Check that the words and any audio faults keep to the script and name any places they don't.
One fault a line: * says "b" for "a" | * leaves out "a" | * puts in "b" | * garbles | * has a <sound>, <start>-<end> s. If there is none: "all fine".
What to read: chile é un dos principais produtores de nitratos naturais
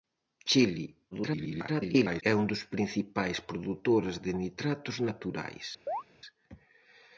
* garbles
* has a chirp, 5.9-6.0 s